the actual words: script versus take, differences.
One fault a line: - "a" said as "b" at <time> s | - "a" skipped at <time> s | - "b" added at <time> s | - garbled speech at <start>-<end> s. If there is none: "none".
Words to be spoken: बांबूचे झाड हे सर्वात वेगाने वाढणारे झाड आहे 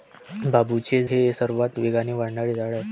- "झाड" skipped at 1.0 s